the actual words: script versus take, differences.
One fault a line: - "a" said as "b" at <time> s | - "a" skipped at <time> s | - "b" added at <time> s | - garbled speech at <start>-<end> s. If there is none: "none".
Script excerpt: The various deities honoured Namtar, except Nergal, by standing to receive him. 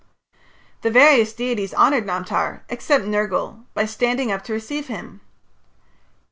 - "up" added at 4.3 s